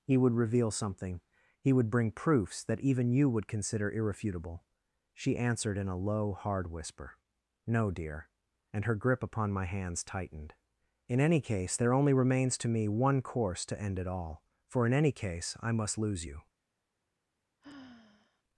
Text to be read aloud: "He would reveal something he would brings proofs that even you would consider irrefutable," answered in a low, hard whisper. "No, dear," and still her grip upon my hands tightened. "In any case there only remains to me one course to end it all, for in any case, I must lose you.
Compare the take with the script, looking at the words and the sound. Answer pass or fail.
fail